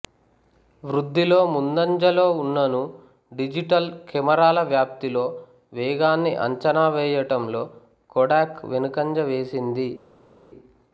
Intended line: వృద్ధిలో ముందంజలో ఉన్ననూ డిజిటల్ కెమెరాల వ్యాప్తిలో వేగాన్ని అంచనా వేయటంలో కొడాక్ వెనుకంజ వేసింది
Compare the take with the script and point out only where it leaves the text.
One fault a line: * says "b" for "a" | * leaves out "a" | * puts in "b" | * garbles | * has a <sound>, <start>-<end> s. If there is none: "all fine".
all fine